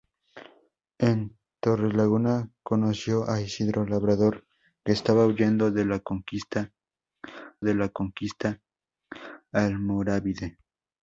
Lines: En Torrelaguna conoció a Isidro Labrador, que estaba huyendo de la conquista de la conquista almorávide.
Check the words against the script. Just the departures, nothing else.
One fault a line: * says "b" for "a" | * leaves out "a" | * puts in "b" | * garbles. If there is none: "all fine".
all fine